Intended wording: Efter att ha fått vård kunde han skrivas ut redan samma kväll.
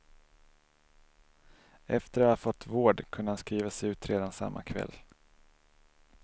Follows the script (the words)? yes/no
yes